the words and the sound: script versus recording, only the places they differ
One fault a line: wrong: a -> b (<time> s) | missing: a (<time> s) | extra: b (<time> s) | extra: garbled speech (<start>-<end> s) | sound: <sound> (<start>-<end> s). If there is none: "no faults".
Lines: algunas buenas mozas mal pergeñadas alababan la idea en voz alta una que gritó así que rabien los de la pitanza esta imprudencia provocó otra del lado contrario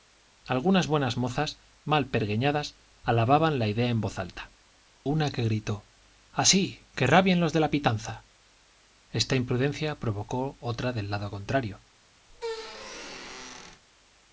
sound: squeak (12.3-13.8 s)